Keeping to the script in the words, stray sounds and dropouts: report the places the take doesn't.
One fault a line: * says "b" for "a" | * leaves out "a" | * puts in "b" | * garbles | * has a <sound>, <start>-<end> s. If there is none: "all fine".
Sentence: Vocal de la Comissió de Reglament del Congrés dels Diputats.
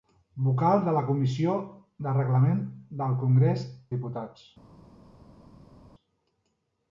* leaves out "dels"